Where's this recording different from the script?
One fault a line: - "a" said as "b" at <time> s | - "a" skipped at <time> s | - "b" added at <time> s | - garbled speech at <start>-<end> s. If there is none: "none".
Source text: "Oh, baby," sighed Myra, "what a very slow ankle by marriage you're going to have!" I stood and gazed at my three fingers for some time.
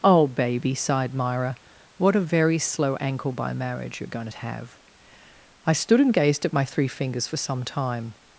none